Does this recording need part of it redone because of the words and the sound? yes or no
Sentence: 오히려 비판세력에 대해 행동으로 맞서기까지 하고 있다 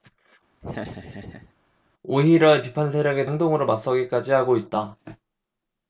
yes